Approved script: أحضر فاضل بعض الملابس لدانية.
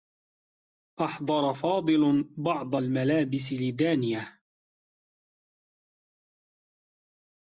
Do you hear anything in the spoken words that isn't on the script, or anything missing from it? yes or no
no